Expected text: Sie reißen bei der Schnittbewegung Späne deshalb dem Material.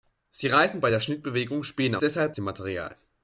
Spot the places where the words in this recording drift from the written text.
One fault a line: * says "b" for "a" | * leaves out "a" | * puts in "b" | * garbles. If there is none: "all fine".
all fine